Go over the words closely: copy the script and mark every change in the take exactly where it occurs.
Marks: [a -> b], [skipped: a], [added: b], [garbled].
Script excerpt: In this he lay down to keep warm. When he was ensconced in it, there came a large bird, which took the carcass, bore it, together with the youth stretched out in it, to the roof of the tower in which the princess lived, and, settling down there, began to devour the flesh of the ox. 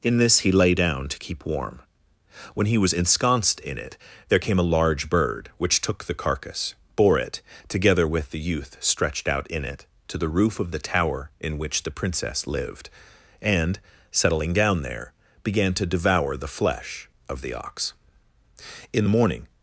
In this he lay down to keep warm. When he was ensconced in it, there came a large bird, which took the carcass, bore it, together with the youth stretched out in it, to the roof of the tower in which the princess lived, and, settling down there, began to devour the flesh of the ox. [added: In the morning]